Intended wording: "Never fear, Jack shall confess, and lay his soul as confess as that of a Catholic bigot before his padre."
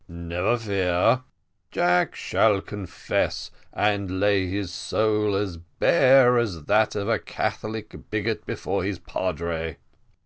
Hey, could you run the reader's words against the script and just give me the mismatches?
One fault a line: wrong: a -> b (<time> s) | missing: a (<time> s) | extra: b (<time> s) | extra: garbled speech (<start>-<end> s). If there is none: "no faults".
wrong: confess -> bare (5.6 s)